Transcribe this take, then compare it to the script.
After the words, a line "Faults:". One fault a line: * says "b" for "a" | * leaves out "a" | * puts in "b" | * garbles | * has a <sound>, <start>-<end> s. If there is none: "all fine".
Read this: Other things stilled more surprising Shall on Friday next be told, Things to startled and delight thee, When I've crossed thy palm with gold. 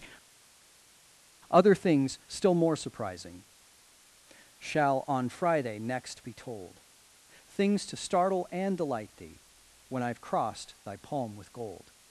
Other things still more surprising Shall on Friday next be told, Things to startle and delight thee, When I've crossed thy palm with gold.
Faults:
* says "still" for "stilled"
* says "startle" for "startled"